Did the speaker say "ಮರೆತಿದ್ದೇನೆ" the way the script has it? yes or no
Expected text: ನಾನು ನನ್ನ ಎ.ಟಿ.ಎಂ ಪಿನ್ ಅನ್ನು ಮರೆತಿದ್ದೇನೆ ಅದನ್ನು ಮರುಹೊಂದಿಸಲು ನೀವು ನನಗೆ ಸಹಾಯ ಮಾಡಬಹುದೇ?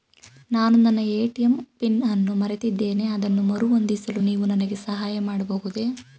yes